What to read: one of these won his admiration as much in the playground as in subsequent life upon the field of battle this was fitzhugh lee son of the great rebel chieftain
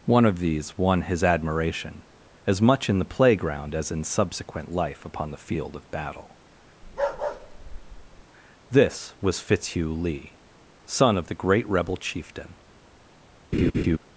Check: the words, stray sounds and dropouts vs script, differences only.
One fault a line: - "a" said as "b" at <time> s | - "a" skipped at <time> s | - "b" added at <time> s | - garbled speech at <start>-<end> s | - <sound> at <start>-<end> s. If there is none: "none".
- bark at 6.8-8.2 s
- laugh at 13.5-14.0 s